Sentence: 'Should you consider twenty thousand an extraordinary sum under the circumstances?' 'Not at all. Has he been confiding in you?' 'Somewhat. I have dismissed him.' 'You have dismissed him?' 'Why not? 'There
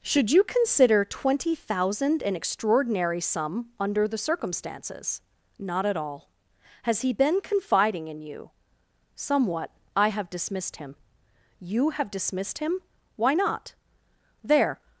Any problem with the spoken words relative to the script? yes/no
no